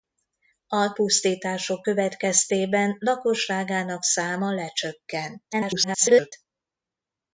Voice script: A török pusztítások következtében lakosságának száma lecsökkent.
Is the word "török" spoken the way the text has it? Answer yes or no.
no